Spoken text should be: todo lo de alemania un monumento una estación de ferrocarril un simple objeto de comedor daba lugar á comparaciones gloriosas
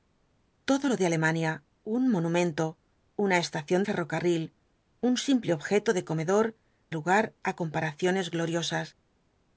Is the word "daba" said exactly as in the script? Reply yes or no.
no